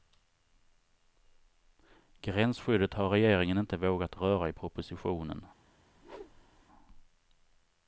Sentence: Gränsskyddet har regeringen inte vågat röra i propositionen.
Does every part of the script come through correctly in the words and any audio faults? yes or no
no